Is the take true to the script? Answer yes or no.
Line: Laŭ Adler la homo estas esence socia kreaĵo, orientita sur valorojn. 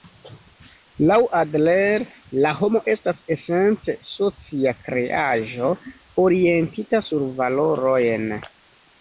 yes